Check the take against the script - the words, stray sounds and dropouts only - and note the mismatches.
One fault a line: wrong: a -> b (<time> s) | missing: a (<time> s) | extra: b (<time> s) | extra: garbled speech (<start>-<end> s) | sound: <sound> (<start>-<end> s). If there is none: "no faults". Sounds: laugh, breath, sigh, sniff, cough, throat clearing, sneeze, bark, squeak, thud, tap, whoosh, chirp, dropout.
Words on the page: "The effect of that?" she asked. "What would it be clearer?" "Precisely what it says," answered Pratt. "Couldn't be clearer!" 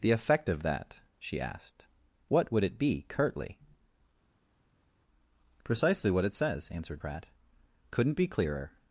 wrong: clearer -> curtly (3.1 s)